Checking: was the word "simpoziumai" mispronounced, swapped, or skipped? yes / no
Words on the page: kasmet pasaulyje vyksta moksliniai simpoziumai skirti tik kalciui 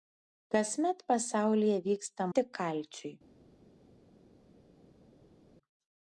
yes